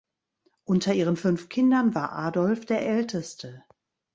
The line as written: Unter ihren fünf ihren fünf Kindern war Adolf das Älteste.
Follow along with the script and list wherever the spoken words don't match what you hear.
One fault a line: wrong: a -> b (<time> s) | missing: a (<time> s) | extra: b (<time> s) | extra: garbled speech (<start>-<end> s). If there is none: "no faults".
missing: ihren fünf (1.5 s)
wrong: das -> der (2.6 s)